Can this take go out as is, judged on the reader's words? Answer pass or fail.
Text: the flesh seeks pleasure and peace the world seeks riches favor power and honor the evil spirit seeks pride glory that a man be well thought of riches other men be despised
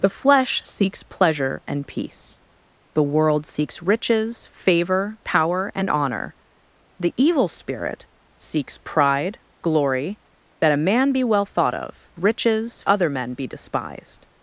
pass